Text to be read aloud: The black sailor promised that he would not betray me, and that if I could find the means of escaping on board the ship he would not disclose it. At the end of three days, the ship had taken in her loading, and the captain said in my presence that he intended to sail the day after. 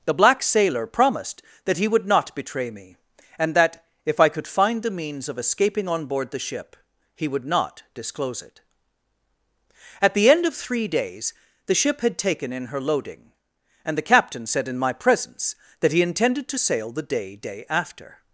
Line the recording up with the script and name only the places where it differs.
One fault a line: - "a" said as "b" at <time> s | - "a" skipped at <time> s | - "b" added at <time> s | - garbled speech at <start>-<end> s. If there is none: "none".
- "day" added at 17.4 s